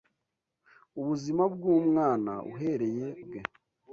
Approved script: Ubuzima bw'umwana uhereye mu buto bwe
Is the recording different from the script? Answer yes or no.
yes